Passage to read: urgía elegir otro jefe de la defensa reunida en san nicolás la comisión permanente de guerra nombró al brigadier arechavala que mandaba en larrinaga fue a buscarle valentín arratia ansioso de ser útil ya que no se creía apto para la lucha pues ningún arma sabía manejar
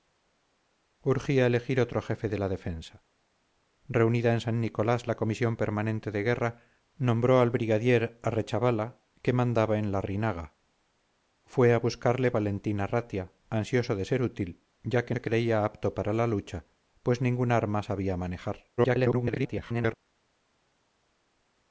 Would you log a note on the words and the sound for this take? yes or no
yes